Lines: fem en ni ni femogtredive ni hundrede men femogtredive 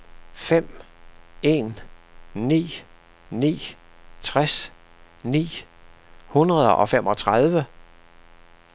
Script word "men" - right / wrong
wrong